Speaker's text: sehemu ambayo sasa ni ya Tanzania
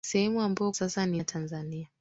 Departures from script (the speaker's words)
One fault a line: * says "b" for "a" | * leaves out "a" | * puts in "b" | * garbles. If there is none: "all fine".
all fine